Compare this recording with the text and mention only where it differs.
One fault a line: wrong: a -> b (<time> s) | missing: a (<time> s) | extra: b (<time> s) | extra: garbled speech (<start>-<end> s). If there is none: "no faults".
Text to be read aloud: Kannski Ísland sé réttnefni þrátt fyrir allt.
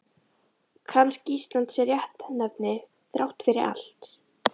no faults